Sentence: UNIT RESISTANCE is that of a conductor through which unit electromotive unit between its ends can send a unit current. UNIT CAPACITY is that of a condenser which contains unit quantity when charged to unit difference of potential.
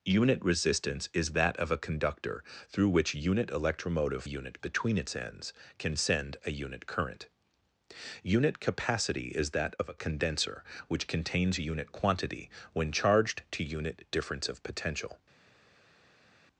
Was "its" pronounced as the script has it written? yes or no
yes